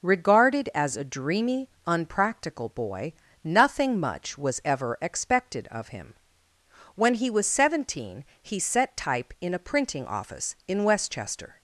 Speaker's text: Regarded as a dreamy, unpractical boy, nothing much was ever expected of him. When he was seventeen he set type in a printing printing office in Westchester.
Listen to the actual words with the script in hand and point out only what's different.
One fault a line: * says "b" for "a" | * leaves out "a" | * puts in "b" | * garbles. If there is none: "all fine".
* leaves out "printing"